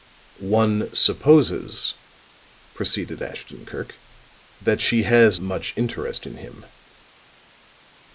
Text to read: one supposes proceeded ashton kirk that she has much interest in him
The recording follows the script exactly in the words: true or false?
true